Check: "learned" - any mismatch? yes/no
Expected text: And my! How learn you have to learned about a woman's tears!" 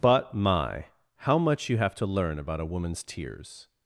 yes